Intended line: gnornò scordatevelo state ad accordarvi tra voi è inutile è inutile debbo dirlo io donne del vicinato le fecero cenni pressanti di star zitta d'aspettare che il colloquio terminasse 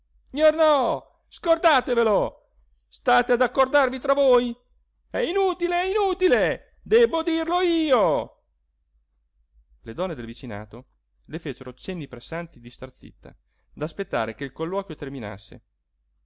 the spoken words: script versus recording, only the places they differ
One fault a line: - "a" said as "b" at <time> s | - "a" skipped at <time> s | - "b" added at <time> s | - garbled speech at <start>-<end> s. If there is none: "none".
- "le" added at 9.8 s